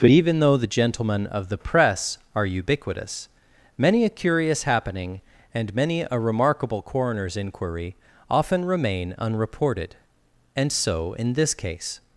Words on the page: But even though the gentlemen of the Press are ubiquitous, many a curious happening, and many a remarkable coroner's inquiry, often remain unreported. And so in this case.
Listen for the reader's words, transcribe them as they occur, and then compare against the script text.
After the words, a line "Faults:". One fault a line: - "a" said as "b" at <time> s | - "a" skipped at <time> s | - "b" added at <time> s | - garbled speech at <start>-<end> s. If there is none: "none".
But even though the gentlemen of the Press are ubiquitous, many a curious happening, and many a remarkable coroner's inquiry, often remain unreported. And so in this case.
Faults:
none